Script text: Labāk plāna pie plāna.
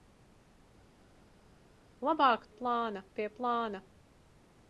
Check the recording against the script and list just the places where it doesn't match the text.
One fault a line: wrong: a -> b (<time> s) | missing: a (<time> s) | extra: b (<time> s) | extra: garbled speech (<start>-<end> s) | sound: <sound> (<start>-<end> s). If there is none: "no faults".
no faults